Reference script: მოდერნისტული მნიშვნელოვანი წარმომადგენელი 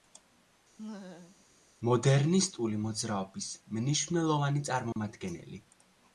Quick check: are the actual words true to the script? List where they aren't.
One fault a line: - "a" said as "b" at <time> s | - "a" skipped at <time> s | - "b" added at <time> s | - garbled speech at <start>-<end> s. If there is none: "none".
- "მოძრაობის" added at 2.9 s